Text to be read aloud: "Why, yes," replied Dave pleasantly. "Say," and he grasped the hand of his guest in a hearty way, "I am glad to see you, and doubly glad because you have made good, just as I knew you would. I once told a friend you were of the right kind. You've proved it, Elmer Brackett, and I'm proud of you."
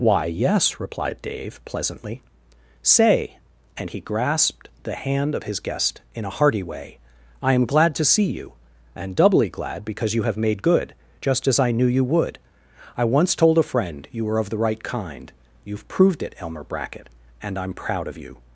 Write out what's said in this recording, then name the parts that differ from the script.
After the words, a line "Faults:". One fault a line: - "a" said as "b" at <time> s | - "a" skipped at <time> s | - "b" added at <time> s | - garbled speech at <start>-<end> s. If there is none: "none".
"Why, yes," replied Dave pleasantly. "Say," and he grasped the hand of his guest in a hearty way, "I am glad to see you, and doubly glad because you have made good, just as I knew you would. I once told a friend you were of the right kind. You've proved it, Elmer Brackett, and I'm proud of you."
Faults:
none